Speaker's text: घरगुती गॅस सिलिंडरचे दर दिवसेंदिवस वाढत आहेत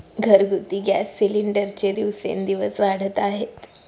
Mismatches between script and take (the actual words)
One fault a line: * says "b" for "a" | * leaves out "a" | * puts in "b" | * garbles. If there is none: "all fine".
* leaves out "दर"